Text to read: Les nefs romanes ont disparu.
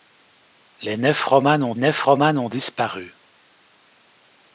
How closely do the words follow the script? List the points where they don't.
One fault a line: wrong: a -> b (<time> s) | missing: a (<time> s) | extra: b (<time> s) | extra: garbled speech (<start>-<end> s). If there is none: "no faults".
extra: nefs romanes ont (1.8 s)